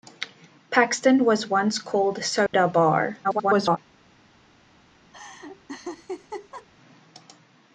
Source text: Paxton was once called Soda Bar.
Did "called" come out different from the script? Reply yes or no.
no